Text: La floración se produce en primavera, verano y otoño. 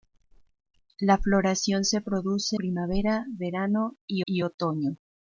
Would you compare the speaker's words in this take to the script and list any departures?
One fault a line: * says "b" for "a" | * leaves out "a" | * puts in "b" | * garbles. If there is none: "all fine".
* leaves out "en"
* puts in "y"